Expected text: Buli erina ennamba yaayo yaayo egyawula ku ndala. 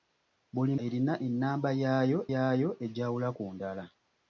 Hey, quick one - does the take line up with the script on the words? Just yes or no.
yes